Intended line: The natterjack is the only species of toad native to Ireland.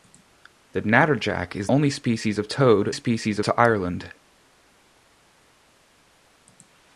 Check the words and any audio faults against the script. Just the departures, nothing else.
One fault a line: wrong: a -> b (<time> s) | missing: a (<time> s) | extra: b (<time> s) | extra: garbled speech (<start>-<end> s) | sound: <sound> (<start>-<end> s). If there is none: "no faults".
missing: the (1.7 s)
wrong: native -> species (2.9 s)